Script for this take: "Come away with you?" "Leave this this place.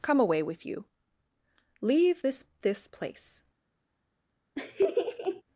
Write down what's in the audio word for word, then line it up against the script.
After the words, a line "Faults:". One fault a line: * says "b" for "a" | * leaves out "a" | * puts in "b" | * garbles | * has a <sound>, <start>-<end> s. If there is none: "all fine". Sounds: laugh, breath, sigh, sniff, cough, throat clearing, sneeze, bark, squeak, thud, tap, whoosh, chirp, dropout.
"Come away with you?" "Leave this this place.
Faults:
* has a laugh, 4.6-5.4 s